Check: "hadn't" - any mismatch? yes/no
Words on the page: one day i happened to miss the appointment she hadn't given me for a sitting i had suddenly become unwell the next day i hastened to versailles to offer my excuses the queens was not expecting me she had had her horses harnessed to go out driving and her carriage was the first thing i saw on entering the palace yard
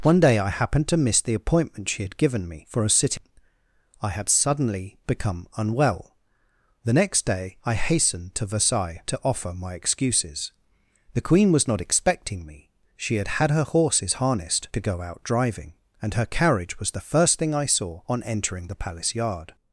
yes